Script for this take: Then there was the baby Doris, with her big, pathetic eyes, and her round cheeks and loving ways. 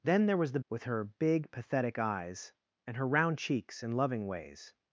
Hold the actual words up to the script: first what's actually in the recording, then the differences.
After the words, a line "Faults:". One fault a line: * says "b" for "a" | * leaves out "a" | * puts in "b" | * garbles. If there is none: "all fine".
Then there was the with her big, pathetic eyes, and her round cheeks and loving ways.
Faults:
* leaves out "baby Doris"